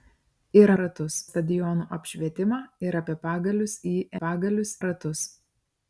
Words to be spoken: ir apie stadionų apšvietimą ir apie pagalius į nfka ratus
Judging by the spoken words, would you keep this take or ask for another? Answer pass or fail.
fail